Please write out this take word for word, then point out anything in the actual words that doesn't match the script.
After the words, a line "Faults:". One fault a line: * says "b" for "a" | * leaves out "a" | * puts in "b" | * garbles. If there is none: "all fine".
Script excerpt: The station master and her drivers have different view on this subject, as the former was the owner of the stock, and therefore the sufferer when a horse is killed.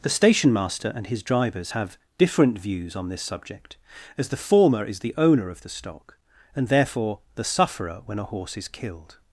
The station master and his drivers have different views on this subject, as the former is the owner of the stock, and therefore the sufferer when a horse is killed.
Faults:
* says "his" for "her"
* says "views" for "view"
* says "is" for "was"